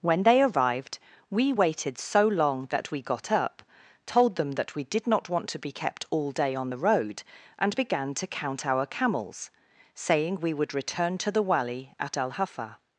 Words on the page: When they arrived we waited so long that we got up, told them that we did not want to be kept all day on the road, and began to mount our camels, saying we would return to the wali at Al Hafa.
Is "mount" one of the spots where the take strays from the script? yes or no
yes